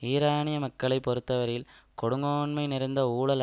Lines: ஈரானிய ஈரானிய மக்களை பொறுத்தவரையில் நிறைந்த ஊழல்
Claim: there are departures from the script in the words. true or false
true